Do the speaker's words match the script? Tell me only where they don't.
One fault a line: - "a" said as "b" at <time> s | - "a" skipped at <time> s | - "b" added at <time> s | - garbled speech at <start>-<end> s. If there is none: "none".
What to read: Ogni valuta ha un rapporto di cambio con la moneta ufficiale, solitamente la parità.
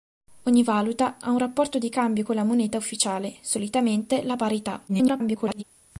- garbled speech at 4.9-5.6 s